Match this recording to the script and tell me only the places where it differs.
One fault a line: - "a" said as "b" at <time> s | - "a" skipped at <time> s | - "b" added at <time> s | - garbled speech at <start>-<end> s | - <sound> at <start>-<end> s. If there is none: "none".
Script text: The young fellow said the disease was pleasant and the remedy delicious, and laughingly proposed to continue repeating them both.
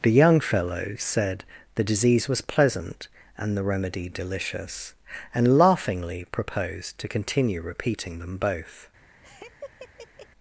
- laugh at 9.2-10.3 s